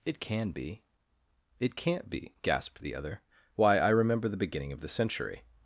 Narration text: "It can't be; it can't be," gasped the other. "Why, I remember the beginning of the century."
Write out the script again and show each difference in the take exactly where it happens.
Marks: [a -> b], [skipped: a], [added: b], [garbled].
"It [can't -> can] be; it can't be," gasped the other. "Why, I remember the beginning of the century."